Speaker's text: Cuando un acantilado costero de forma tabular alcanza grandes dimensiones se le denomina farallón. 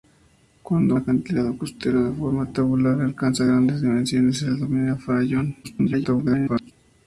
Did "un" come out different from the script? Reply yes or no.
yes